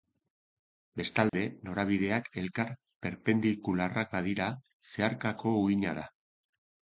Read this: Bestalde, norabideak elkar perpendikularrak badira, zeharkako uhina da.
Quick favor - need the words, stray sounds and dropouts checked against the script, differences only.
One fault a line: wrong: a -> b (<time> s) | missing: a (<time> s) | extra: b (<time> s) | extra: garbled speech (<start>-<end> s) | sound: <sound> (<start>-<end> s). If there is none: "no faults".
sound: dropout (1.3-1.3 s)